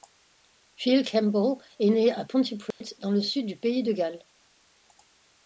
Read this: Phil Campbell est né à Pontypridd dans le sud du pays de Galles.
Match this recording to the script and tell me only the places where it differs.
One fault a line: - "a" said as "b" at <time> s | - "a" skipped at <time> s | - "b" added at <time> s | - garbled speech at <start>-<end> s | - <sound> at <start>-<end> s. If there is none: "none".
- dropout at 2.7-2.8 s